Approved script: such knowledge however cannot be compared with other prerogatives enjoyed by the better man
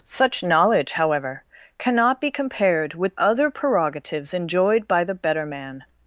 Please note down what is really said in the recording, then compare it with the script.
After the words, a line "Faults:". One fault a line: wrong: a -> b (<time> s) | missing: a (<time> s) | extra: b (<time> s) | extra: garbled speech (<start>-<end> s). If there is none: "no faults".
such knowledge however cannot be compared with other prerogatives enjoyed by the better man
Faults:
no faults